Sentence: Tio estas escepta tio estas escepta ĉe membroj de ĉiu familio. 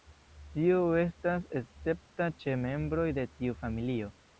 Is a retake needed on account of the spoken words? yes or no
yes